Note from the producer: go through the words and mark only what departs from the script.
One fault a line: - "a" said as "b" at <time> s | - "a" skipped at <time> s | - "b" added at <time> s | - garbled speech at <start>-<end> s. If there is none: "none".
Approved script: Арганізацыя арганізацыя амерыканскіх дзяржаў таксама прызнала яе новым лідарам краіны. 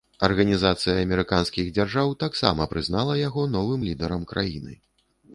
- "арганізацыя" skipped at 0.9 s
- "яе" said as "яго" at 3.2 s